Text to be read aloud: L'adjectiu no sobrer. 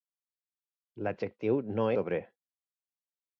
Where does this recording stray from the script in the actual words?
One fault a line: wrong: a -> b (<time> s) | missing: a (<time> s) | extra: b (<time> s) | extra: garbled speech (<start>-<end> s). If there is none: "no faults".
no faults